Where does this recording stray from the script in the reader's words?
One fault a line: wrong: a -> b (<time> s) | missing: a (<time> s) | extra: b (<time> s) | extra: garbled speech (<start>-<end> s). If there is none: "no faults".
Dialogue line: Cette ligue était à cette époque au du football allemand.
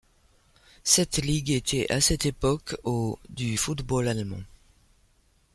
no faults